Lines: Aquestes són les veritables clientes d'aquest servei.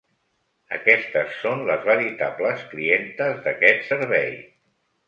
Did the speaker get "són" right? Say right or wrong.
right